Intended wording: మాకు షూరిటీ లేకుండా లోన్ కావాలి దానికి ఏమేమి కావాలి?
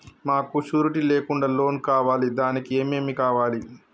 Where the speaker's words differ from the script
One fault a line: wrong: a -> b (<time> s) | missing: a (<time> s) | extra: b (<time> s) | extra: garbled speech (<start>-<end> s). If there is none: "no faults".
no faults